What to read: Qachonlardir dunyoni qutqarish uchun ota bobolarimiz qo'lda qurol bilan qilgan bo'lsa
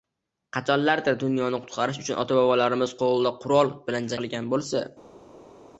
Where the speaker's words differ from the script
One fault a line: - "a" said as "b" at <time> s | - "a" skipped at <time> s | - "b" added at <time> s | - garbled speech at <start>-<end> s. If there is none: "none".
none